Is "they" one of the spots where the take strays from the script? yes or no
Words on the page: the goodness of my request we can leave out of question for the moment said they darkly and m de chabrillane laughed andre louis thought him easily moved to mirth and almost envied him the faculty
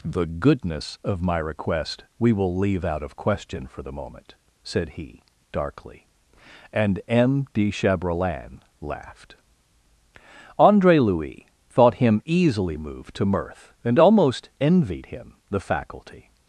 yes